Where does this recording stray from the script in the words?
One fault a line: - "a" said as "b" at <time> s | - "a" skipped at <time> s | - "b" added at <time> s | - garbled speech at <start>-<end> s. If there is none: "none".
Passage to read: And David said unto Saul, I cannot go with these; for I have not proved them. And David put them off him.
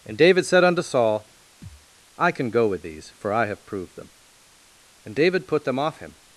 - "cannot" said as "can" at 2.3 s
- "not" skipped at 3.6 s